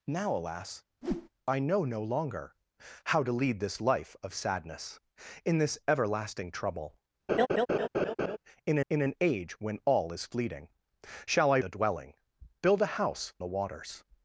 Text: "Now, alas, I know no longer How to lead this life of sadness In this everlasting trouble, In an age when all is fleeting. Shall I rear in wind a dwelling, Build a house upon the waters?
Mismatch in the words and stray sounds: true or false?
true